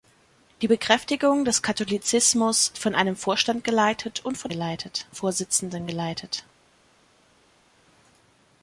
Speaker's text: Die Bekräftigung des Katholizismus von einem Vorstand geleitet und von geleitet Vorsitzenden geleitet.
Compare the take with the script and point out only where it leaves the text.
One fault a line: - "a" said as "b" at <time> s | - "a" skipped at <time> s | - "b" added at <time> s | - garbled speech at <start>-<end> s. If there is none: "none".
none